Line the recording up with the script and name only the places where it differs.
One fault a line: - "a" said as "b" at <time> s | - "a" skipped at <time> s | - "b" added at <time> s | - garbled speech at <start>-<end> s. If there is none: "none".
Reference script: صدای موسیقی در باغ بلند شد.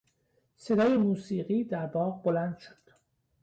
none